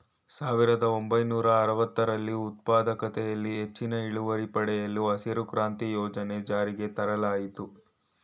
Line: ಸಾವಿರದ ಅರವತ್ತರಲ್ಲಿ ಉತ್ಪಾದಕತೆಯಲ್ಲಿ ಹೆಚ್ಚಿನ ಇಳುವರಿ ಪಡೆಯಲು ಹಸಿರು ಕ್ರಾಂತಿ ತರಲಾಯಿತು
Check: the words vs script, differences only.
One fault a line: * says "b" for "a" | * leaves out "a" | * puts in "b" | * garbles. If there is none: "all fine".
* puts in "ಒಂಬೈನೂರ"
* puts in "ಯೋಜನೆ ಜಾರಿಗೆ"